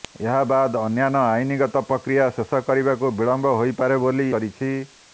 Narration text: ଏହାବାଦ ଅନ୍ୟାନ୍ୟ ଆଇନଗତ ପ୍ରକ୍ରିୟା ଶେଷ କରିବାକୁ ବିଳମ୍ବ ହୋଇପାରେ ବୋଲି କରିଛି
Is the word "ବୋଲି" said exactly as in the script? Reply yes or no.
yes